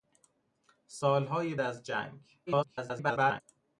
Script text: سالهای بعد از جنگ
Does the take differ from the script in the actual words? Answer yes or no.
yes